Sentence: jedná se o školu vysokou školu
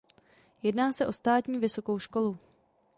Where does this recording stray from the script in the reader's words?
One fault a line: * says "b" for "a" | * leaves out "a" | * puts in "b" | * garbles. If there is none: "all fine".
* says "státní" for "školu"